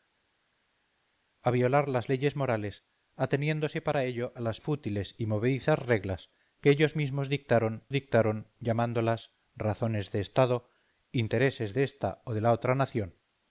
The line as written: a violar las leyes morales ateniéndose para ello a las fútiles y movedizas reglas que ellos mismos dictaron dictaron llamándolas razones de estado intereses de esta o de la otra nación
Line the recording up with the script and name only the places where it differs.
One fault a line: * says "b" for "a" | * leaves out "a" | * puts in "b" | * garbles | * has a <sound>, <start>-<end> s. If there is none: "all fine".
all fine